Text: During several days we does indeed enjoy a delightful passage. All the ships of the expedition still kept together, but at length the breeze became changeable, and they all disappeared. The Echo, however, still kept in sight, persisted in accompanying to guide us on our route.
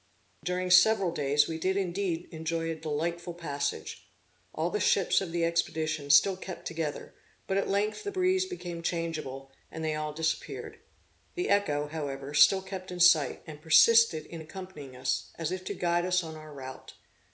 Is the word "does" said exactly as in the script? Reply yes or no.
no